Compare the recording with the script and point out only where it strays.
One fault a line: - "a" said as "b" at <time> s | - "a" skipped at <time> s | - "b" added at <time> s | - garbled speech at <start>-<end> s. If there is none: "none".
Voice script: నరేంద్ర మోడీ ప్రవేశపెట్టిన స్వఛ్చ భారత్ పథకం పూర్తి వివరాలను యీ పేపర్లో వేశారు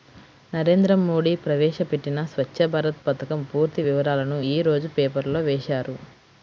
- "రోజు" added at 4.7 s